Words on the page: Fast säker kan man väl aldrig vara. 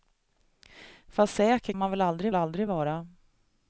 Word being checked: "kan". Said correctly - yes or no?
no